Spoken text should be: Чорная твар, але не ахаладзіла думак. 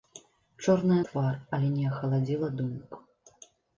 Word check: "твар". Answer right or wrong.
right